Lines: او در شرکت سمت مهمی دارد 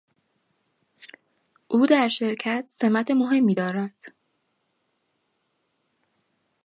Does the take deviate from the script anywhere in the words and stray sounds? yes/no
no